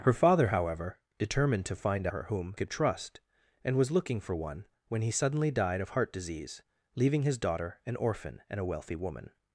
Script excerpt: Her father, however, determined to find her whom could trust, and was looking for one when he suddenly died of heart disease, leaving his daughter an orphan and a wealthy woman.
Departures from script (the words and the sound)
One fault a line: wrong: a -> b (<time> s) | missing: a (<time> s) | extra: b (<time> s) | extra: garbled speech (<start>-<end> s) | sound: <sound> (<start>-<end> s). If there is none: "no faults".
no faults